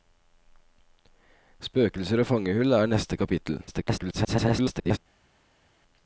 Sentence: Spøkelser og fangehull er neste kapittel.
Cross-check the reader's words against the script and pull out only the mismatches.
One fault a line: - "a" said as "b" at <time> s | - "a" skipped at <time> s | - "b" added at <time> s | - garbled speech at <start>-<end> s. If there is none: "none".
- garbled speech at 3.7-5.0 s